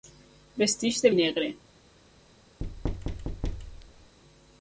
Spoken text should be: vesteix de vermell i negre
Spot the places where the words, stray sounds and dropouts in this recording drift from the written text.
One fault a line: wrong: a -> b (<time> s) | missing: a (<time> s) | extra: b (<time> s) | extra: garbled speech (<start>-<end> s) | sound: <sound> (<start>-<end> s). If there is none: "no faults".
missing: vermell (1.1 s)
sound: thud (2.6-4.2 s)